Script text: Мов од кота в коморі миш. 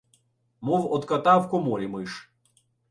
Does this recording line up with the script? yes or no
yes